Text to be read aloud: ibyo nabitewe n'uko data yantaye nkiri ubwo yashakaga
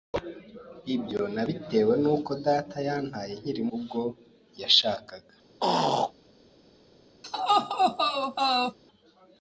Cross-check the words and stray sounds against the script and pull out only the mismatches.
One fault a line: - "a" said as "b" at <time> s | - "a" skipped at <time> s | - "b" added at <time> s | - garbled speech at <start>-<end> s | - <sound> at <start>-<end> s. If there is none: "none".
- throat clearing at 5.6-6.1 s
- laugh at 7.2-8.8 s